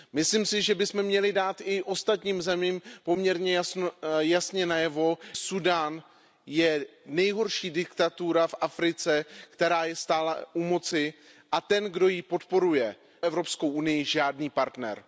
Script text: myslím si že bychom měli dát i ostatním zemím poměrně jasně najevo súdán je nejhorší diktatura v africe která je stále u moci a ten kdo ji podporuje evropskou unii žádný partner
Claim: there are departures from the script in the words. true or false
false